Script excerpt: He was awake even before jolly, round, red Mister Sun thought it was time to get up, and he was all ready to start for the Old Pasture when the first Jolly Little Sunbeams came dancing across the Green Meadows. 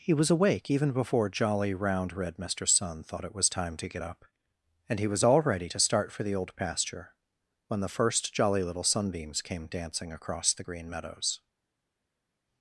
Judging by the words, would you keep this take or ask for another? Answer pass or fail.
pass